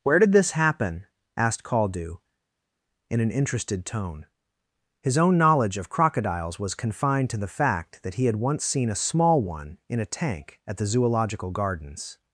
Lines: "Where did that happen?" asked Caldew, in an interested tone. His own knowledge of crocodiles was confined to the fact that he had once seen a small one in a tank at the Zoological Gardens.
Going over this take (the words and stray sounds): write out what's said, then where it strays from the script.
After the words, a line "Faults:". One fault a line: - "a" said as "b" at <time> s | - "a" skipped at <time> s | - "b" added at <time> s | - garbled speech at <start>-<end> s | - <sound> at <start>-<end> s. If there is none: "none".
"Where did this happen?" asked Caldew, in an interested tone. His own knowledge of crocodiles was confined to the fact that he had once seen a small one in a tank at the Zoological Gardens.
Faults:
- "that" said as "this" at 0.3 s